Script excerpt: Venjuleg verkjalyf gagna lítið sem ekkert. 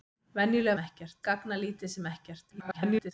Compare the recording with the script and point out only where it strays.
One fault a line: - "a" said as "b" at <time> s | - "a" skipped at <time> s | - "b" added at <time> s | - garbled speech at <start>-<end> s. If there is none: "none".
- "verkjalyf" said as "ekkert" at 0.8 s
- garbled speech at 2.5-3.1 s